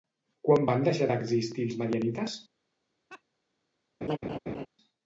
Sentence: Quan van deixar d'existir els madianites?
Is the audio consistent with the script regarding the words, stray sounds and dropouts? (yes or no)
no